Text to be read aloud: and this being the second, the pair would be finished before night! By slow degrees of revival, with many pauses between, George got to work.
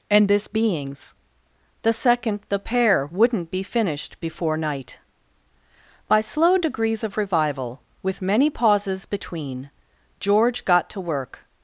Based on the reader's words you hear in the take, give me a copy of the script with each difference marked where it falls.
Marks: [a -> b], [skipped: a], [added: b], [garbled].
and this [being -> beings] the second, the pair [would -> wouldn't] be finished before night! By slow degrees of revival, with many pauses between, George got to work.